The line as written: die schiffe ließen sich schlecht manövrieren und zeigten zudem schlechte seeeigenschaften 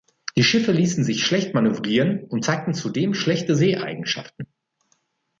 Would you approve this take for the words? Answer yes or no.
yes